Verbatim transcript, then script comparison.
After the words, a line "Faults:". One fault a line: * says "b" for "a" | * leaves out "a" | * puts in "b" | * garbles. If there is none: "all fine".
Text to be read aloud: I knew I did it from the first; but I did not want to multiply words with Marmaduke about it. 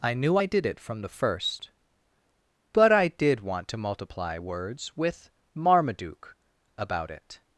I knew I did it from the first; but I did want to multiply words with Marmaduke about it.
Faults:
* leaves out "not"